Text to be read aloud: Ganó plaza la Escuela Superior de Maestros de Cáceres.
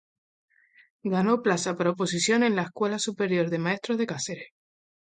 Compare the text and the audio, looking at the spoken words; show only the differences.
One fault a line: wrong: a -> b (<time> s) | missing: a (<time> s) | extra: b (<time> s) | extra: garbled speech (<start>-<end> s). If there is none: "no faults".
extra: por oposición en (1.8 s)